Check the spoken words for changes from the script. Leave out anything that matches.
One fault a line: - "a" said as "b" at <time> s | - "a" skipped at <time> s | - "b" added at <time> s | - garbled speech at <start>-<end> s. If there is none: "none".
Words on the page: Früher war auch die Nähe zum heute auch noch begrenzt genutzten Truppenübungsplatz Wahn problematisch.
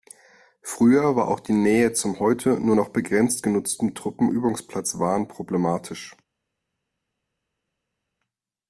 - "auch" said as "nur" at 2.6 s